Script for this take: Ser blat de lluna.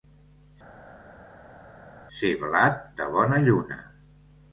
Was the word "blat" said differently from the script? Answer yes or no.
no